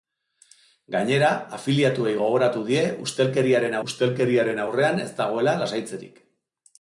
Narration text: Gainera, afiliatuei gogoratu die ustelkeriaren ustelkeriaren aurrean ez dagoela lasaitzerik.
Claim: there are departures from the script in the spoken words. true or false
false